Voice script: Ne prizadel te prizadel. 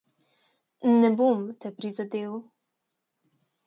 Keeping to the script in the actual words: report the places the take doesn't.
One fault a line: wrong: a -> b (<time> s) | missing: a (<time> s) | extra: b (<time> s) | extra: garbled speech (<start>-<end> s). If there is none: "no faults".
wrong: prizadel -> bom (1.2 s)